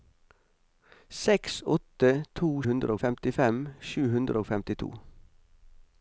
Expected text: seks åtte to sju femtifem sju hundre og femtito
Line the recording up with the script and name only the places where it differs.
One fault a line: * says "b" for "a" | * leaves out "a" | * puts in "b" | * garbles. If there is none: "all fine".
* says "hundre" for "sju"